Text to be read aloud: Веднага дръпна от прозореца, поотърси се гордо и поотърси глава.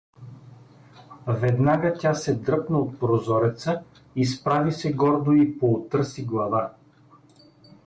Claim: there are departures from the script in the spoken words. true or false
true